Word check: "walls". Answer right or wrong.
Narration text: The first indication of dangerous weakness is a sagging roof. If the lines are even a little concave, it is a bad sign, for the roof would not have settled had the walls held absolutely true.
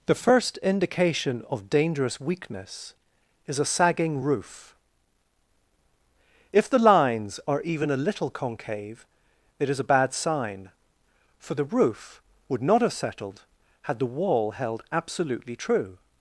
wrong